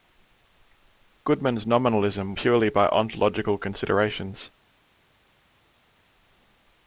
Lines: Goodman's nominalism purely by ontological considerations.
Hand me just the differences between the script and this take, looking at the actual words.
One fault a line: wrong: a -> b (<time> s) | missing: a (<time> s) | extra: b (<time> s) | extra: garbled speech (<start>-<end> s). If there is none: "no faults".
no faults